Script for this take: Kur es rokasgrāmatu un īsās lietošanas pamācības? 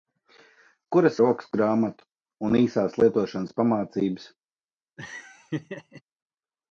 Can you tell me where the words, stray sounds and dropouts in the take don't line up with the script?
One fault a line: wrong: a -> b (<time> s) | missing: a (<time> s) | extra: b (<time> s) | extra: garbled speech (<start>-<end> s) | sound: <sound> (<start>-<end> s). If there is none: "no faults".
sound: laugh (5.0-6.0 s)